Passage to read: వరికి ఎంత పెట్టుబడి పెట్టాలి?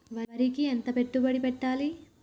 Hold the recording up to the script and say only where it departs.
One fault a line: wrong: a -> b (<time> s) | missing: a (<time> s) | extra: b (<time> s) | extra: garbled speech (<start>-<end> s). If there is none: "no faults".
no faults